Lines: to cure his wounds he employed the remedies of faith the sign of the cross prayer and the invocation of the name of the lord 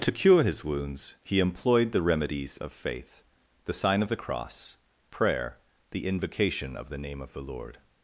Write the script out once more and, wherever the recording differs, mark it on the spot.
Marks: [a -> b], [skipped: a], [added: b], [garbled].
to cure his wounds he employed the remedies of faith the sign of the cross prayer [skipped: and] the invocation of the name of the lord